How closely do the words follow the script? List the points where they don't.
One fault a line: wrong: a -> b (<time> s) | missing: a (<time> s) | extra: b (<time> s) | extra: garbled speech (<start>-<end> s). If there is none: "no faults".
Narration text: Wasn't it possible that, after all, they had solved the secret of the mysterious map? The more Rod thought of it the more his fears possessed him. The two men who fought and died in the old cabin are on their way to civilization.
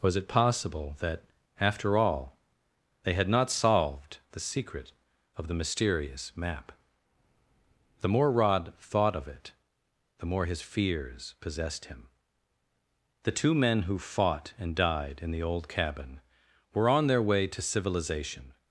wrong: Wasn't -> Was (0.0 s)
extra: not (3.3 s)
wrong: are -> were (16.8 s)